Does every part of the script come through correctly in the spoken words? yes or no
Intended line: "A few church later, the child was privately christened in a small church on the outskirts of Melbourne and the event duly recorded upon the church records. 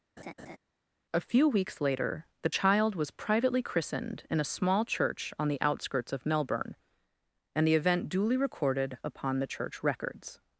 no